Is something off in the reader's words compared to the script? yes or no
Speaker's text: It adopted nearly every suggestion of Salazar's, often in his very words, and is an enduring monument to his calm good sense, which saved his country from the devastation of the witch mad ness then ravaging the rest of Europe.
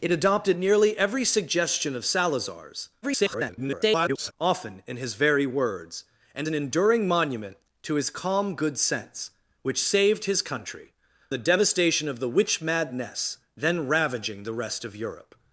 yes